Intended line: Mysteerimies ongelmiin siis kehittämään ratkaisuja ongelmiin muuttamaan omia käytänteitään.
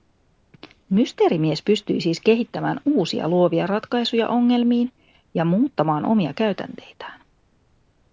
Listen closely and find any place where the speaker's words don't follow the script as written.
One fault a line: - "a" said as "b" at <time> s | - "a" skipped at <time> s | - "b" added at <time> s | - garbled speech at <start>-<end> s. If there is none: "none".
- "ongelmiin" said as "pystyi" at 1.6 s
- "uusia luovia" added at 2.9 s
- "ja" added at 5.3 s